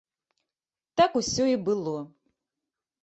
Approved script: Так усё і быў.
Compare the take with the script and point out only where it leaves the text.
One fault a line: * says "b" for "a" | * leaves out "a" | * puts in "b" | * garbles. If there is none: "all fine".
* says "было" for "быў"